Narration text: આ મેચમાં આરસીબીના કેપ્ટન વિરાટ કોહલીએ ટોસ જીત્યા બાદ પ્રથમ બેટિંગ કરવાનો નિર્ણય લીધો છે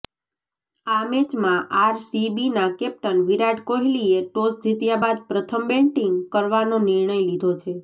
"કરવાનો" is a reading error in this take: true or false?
false